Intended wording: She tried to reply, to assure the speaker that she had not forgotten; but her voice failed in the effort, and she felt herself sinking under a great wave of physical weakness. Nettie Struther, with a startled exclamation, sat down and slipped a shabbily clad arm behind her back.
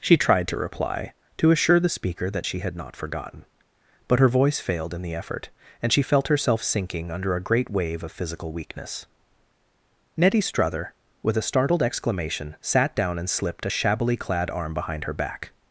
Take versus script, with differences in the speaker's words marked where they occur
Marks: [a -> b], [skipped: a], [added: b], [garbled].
She tried to reply, to assure the speaker that she had not forgotten; but her voice failed in the effort, and she felt herself sinking under a great wave of physical weakness. Nettie Struther, with a startled exclamation, sat down and slipped a shabbily clad arm behind her back.